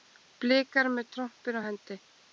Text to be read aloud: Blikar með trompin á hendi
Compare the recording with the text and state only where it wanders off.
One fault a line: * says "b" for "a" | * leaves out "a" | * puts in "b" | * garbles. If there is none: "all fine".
all fine